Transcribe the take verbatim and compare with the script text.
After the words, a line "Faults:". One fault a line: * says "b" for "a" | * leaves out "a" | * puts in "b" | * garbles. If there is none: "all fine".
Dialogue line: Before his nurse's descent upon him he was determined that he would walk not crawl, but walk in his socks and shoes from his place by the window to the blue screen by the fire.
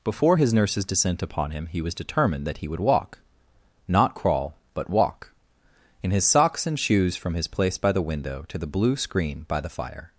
Before his nurse's descent upon him he was determined that he would walk not crawl, but walk in his socks and shoes from his place by the window to the blue screen by the fire.
Faults:
all fine